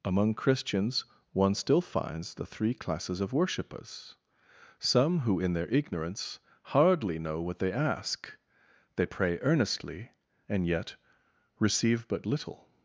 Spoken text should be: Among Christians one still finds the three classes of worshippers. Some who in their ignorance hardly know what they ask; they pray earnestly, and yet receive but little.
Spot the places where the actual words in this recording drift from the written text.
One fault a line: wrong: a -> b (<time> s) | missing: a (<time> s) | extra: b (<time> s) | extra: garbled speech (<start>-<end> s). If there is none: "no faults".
no faults